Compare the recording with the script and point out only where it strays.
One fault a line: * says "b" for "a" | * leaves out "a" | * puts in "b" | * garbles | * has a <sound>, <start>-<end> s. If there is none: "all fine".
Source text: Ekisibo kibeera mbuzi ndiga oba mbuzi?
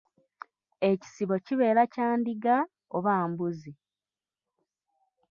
* says "kya" for "mbuzi"